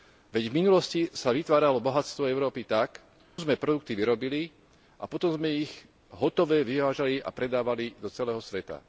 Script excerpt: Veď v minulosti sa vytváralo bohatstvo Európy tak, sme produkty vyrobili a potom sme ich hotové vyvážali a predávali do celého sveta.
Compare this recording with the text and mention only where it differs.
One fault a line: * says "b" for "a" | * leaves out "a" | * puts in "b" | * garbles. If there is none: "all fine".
all fine